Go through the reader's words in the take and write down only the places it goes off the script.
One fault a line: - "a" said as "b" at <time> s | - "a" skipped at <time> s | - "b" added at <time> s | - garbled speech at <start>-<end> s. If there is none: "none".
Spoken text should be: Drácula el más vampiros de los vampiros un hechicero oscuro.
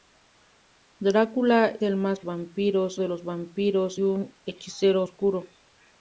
none